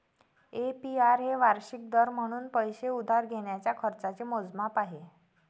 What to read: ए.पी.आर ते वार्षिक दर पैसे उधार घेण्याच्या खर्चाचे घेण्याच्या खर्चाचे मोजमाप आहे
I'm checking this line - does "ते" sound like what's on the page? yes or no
no